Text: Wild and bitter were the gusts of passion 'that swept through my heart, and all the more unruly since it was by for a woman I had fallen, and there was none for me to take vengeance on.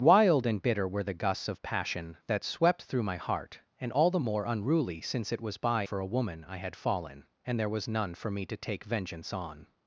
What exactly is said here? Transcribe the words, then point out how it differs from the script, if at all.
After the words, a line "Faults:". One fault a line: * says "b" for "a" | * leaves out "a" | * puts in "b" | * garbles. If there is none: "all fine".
Wild and bitter were the gusts of passion 'that swept through my heart, and all the more unruly since it was by for a woman I had fallen, and there was none for me to take vengeance on.
Faults:
all fine